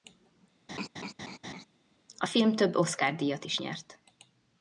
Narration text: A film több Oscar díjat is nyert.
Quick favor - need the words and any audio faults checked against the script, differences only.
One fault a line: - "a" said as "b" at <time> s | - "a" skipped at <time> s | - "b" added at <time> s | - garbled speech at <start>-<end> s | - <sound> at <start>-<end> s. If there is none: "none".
- laugh at 0.7-1.7 s